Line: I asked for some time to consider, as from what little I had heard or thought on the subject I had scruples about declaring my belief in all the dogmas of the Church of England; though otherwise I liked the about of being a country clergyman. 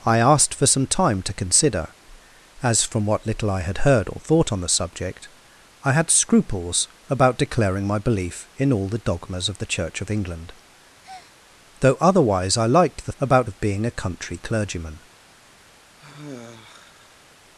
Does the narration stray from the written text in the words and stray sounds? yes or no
yes